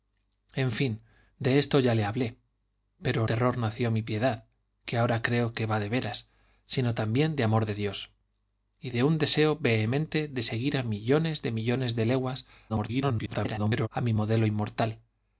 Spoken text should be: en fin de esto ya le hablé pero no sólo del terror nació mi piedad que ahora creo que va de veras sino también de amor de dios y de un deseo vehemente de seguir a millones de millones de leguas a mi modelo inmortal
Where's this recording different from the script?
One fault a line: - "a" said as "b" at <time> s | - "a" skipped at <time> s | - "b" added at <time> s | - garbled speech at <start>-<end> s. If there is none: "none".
- "no sólo del" skipped at 3.3 s
- garbled speech at 12.7-13.9 s